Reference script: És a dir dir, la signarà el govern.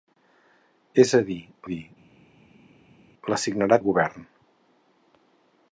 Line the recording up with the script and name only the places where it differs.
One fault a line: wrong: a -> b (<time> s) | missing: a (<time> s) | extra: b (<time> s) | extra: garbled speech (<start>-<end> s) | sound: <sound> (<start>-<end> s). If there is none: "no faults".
no faults